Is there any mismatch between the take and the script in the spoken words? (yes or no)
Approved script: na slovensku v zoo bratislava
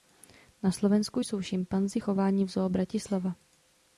yes